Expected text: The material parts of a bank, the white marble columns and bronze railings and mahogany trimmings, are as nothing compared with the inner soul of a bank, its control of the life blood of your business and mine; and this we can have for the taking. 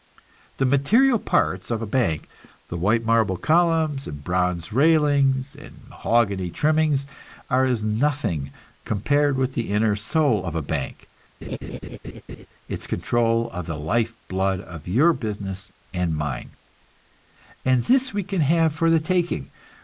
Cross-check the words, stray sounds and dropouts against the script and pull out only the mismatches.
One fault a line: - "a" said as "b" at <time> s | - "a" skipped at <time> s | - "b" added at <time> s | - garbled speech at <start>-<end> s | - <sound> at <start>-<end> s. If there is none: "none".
- laugh at 11.4-12.5 s